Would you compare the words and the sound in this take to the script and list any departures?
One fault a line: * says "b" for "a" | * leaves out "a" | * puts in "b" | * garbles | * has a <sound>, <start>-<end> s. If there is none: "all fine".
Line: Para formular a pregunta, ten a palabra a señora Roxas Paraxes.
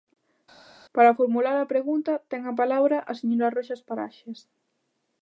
all fine